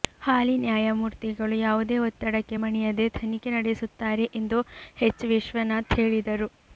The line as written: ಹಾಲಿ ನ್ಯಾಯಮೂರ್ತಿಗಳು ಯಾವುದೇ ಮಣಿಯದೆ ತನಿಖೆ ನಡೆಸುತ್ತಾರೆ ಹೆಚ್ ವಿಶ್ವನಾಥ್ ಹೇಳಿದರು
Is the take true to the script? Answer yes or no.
no